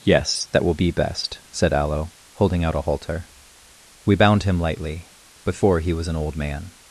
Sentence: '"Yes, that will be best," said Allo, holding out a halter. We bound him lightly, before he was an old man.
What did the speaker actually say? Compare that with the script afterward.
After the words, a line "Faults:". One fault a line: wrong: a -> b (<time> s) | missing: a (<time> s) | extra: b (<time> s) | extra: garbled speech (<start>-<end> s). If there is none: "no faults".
'"Yes, that will be best," said Allo, holding out a halter. We bound him lightly, before he was an old man.
Faults:
no faults